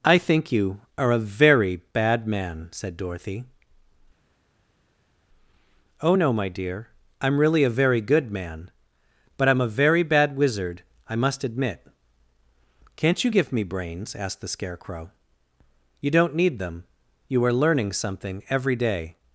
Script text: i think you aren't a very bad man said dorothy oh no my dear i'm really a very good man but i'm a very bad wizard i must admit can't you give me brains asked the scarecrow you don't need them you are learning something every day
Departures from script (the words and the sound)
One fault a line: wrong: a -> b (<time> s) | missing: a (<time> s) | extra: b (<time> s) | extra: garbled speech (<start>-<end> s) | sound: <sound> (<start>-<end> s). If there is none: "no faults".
wrong: aren't -> are (1.0 s)